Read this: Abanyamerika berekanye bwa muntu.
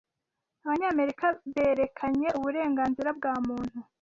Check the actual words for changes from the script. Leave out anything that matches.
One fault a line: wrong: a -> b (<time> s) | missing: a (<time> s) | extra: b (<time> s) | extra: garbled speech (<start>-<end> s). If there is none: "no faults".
extra: uburenganzira (2.4 s)